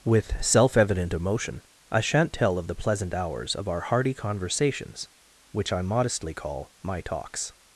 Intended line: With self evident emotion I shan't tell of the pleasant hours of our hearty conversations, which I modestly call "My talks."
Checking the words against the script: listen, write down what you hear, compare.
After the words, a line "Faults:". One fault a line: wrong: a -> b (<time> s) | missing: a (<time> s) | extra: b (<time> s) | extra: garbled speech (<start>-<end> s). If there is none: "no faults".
With self evident emotion I shan't tell of the pleasant hours of our hearty conversations, which I modestly call "My talks."
Faults:
no faults